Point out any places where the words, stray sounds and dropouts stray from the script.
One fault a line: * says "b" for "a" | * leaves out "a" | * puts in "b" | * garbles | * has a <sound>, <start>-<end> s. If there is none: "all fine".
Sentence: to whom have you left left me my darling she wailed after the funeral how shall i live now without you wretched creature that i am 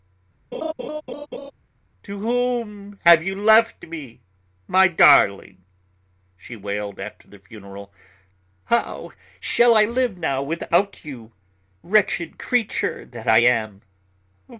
* has a laugh, 0.5-1.5 s
* leaves out "left"